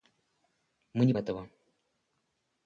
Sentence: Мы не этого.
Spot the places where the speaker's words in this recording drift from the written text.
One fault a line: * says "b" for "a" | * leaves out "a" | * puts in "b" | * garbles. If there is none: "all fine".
all fine